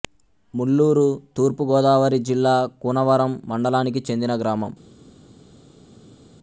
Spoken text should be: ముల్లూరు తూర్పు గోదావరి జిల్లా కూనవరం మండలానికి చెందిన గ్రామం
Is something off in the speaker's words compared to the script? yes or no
no